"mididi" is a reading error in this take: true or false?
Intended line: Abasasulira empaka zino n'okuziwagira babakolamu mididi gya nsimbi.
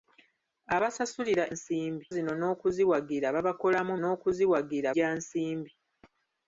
true